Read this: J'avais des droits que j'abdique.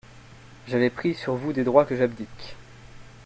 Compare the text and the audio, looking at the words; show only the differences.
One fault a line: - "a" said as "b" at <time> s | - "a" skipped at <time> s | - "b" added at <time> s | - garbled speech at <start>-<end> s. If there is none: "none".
- "pris sur vous" added at 0.9 s